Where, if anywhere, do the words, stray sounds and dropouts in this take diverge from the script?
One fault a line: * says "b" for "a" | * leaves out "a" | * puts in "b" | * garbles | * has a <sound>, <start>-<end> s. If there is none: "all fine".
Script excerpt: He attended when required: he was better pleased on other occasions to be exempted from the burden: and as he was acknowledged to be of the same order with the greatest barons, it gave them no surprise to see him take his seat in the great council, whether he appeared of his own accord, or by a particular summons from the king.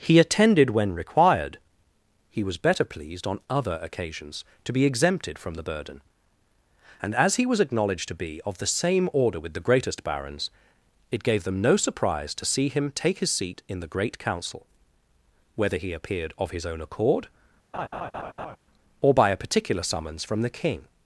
* has a laugh, 17.7-18.6 s